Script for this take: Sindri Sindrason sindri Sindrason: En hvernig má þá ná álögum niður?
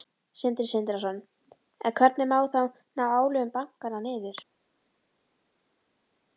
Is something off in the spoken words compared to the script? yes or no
yes